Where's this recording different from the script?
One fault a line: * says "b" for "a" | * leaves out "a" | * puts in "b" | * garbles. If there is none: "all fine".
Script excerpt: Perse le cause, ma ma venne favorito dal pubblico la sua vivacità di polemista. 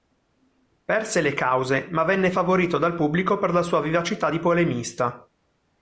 * leaves out "ma"
* puts in "per"